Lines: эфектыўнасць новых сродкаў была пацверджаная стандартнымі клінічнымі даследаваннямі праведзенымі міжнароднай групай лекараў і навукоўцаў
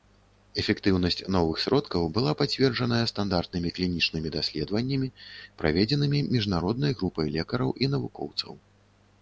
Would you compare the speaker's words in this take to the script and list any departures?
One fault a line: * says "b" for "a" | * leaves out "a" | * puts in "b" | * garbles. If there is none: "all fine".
all fine